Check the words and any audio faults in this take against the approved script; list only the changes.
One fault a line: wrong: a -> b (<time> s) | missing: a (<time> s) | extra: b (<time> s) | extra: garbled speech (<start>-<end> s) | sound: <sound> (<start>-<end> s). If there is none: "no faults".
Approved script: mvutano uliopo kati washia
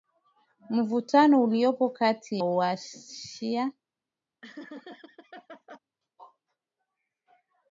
sound: laugh (4.4-5.8 s)